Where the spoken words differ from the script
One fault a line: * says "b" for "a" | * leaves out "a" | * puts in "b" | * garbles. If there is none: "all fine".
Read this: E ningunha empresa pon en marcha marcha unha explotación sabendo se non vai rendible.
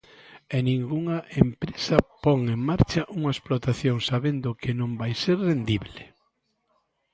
* leaves out "marcha"
* says "que" for "se"
* puts in "ser"